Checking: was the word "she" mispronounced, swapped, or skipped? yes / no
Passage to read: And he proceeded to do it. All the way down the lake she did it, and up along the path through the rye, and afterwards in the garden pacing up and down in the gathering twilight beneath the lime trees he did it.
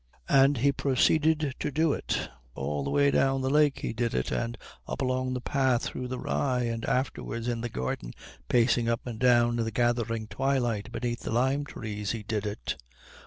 yes